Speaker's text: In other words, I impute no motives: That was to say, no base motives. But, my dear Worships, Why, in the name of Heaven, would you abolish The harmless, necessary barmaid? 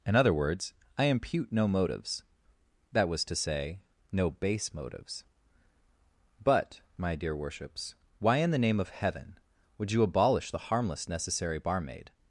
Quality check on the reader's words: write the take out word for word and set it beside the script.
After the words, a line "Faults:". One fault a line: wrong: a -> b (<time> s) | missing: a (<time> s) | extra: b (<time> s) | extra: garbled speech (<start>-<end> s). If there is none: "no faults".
In other words, I impute no motives: That was to say, no base motives. But, my dear Worships, Why, in the name of Heaven, would you abolish The harmless, necessary barmaid?
Faults:
no faults